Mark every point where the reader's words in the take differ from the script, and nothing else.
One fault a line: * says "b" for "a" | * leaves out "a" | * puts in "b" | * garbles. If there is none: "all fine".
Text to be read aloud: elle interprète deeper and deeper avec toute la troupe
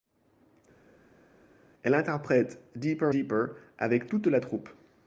* leaves out "and"